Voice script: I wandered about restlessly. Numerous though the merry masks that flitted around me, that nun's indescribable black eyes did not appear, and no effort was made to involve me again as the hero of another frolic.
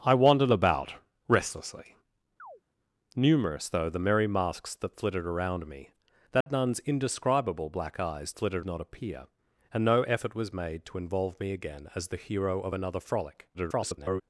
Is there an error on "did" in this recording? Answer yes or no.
yes